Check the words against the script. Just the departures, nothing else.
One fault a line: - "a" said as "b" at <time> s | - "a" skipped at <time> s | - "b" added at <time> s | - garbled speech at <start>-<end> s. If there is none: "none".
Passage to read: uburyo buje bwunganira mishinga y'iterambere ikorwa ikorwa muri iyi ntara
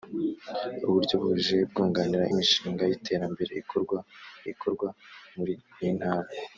none